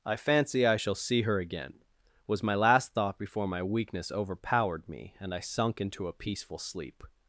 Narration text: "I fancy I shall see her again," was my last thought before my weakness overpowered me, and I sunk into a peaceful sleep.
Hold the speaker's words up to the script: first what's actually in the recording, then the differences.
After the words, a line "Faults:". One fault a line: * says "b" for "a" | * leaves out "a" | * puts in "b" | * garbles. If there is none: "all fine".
"I fancy I shall see her again," was my last thought before my weakness overpowered me, and I sunk into a peaceful sleep.
Faults:
all fine